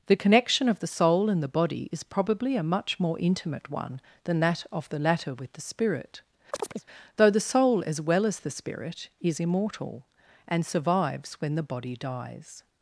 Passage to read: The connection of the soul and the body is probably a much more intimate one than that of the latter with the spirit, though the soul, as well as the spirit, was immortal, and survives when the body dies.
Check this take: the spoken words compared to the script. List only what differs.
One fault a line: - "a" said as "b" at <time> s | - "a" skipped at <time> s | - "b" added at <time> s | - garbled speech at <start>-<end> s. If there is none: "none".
- "was" said as "is" at 9.2 s